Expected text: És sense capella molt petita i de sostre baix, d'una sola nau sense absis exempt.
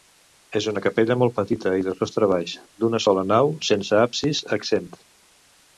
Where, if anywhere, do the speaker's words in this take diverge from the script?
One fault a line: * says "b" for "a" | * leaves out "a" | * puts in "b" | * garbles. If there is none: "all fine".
* says "una" for "sense"